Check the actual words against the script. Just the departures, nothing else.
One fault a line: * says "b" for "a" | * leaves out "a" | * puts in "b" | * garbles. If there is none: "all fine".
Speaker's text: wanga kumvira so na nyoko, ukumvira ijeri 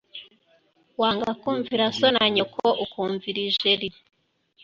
all fine